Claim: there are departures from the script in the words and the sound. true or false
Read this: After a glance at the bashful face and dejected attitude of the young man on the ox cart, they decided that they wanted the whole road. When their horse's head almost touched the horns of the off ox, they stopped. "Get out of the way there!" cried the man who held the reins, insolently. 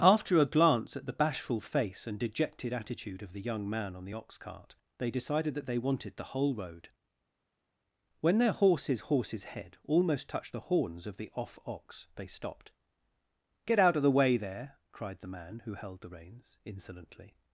true